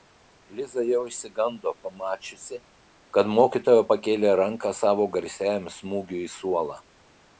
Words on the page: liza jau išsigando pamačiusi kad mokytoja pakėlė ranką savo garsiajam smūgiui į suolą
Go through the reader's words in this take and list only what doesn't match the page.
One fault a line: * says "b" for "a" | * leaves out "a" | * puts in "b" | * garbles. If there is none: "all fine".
all fine